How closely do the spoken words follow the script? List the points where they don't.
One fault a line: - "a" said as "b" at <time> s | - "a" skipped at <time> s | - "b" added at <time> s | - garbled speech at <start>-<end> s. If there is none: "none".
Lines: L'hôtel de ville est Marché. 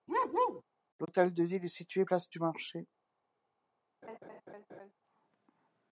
- "situé place du" added at 1.7 s